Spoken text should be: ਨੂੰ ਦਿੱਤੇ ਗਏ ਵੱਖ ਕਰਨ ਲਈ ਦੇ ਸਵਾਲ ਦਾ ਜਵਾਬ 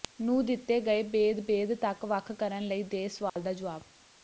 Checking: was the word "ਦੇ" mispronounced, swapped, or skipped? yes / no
no